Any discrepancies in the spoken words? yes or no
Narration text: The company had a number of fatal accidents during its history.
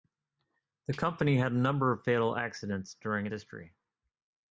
yes